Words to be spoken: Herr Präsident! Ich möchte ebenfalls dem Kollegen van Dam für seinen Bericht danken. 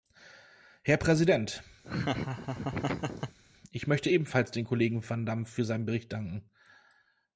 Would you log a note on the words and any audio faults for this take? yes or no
yes